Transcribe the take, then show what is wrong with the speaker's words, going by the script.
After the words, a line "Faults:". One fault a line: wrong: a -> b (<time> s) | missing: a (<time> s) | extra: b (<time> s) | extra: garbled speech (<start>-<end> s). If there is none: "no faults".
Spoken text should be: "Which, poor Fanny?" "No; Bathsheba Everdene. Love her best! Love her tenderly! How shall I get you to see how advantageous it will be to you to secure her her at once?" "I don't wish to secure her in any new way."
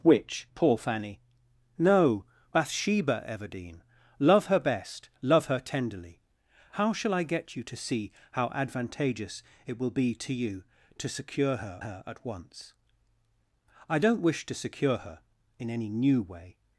"Which, poor Fanny?" "No; Bathsheba Everdene. Love her best! Love her tenderly! How shall I get you to see how advantageous it will be to you to secure her her at once?" "I don't wish to secure her in any new way."
Faults:
no faults